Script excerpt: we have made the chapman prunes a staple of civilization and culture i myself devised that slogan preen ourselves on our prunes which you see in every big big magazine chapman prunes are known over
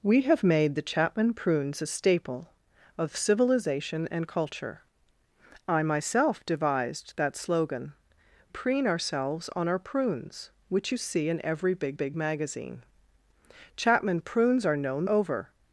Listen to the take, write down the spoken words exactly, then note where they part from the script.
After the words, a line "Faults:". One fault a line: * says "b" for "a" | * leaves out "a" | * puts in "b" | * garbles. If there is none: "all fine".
we have made the chapman prunes a staple of civilization and culture i myself devised that slogan preen ourselves on our prunes which you see in every big big magazine chapman prunes are known over
Faults:
all fine